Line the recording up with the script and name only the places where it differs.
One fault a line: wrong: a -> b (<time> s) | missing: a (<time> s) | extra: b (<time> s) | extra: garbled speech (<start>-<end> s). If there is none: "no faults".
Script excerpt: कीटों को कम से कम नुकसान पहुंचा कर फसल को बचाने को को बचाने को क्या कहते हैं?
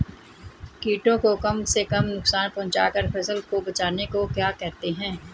missing: को बचाने को (4.2 s)